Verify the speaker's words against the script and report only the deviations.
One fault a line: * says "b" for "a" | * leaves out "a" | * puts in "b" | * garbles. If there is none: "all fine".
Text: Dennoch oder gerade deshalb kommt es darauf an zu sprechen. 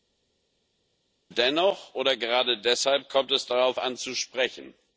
all fine